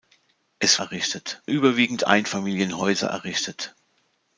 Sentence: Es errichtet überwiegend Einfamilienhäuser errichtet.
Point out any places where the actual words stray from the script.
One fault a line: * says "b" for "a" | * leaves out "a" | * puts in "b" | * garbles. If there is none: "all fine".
all fine